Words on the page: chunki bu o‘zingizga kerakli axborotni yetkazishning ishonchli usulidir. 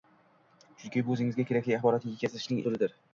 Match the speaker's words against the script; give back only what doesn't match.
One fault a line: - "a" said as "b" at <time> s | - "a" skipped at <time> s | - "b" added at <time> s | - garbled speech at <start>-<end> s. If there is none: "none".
- "ishonchli" skipped at 2.6 s